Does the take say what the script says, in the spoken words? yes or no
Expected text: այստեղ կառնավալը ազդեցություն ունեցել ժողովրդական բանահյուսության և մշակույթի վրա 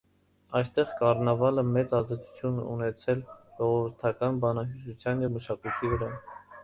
no